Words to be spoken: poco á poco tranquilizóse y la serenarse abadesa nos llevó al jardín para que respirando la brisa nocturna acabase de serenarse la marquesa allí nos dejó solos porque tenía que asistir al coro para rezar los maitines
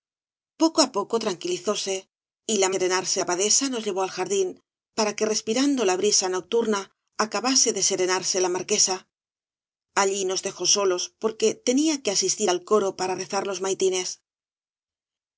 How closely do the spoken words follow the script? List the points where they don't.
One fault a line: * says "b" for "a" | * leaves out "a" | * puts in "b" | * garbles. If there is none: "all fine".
all fine